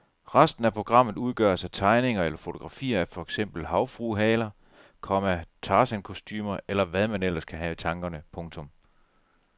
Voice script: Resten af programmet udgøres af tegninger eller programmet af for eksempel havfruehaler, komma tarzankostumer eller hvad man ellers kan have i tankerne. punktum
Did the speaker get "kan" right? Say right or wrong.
right